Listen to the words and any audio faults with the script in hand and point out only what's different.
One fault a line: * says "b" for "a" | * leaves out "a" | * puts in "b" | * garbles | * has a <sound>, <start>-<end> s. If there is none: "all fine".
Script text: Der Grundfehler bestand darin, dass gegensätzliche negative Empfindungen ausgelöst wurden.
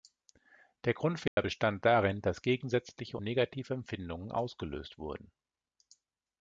* has a dropout, 1.3-1.4 s